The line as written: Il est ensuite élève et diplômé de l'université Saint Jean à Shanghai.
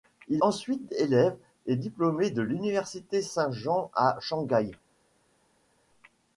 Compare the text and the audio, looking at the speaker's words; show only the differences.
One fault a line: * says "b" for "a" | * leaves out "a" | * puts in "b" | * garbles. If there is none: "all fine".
* leaves out "est"